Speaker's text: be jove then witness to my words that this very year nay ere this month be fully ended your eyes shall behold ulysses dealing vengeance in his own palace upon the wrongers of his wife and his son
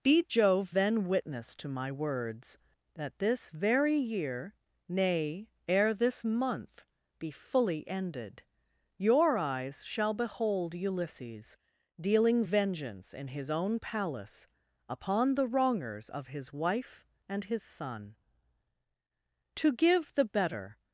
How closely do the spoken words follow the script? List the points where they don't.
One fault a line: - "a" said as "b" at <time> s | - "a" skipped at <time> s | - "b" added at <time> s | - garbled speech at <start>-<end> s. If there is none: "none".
- "to give the better" added at 19.5 s